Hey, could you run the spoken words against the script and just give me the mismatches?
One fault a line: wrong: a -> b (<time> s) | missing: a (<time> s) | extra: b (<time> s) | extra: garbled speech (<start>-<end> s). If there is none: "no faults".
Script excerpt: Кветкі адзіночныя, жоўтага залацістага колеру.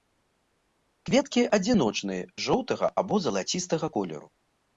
extra: або (3.0 s)